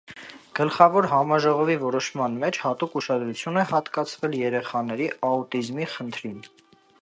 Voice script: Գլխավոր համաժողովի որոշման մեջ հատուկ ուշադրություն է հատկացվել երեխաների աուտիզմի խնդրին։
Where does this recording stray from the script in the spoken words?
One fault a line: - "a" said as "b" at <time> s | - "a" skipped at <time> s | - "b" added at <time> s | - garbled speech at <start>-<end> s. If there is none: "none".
none